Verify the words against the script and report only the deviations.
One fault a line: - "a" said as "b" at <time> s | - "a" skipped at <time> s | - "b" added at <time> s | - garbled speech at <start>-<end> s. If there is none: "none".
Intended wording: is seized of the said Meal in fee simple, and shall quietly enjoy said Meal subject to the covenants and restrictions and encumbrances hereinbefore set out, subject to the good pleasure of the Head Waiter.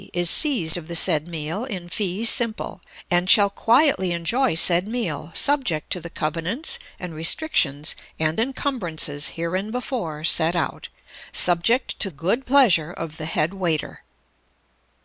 - "the" skipped at 12.1 s